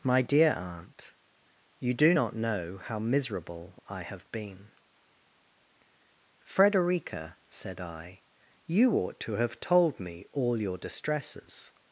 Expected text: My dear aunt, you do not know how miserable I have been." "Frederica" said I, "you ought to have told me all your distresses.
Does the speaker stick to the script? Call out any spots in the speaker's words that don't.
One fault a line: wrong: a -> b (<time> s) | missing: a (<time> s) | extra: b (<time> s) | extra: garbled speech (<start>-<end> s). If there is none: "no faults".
no faults